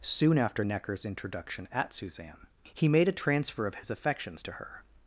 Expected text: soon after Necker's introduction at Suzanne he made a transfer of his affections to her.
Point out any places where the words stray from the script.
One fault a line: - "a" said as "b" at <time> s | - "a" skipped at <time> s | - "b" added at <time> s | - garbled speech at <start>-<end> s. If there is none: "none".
none